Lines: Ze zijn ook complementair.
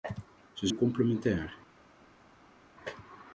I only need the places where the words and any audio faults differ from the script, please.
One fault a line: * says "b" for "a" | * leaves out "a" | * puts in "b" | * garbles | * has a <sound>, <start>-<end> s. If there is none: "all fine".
* leaves out "zijn"